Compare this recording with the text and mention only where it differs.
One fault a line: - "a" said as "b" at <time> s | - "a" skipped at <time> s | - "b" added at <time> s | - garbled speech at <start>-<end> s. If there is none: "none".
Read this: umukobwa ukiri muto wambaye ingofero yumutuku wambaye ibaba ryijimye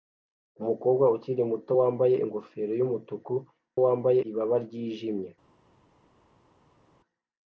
none